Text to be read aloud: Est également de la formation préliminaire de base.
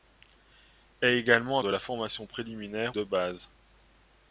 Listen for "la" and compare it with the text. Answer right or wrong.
right